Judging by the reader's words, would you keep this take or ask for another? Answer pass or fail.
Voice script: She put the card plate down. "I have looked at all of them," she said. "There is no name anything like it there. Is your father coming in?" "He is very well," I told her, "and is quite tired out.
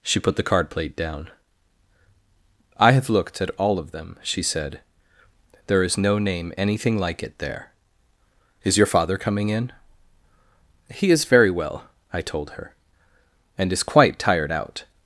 pass